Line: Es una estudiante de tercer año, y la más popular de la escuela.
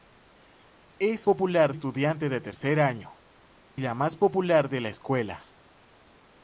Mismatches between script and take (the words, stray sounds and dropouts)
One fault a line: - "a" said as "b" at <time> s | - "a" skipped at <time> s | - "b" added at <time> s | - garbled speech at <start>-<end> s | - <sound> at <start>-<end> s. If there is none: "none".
- "una" said as "popular" at 1.2 s
- "y" skipped at 3.2 s